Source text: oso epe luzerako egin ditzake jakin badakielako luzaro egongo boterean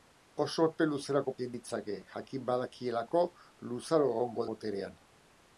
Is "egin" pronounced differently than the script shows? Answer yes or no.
no